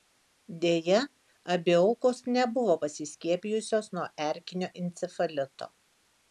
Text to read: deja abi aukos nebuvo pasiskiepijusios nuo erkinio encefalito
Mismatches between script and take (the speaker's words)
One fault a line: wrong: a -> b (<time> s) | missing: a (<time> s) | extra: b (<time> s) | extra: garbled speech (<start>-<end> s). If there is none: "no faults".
no faults